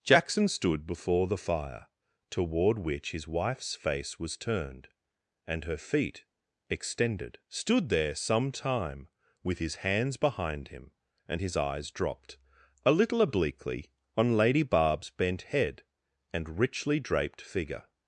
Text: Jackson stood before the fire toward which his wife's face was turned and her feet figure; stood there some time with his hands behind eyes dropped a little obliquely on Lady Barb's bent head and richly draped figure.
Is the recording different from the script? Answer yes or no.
yes